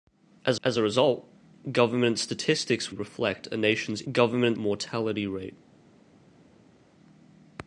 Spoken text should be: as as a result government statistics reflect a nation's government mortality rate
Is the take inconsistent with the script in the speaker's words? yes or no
no